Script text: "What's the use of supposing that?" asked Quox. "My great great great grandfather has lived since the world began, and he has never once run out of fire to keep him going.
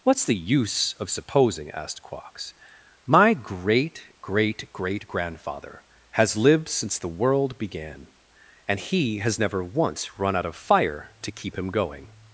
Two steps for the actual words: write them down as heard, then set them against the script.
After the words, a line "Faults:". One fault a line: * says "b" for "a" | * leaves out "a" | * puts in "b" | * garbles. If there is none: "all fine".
"What's the use of supposing?" asked Quox. "My great great great grandfather has lived since the world began, and he has never once run out of fire to keep him going.
Faults:
* leaves out "that"